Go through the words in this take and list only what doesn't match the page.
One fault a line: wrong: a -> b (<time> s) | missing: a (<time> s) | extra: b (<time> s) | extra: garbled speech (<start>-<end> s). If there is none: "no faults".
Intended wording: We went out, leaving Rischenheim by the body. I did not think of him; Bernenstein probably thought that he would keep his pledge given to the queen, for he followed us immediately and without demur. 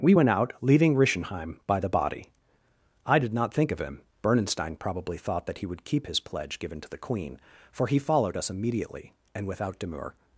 no faults